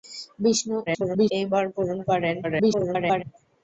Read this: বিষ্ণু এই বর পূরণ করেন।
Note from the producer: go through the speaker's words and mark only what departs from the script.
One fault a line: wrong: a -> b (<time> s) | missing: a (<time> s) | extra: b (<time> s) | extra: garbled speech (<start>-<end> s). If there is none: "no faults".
extra: garbled speech (0.9-1.3 s)
extra: garbled speech (2.4-3.2 s)